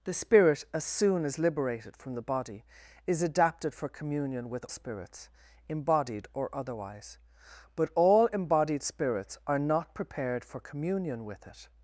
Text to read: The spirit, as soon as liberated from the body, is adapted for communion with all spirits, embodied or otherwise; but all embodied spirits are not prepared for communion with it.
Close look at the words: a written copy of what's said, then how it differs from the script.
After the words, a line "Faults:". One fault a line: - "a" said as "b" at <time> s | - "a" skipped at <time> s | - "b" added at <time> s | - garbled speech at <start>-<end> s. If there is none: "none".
The spirit, as soon as liberated from the body, is adapted for communion with spirits, embodied or otherwise; but all embodied spirits are not prepared for communion with it.
Faults:
- "all" skipped at 4.7 s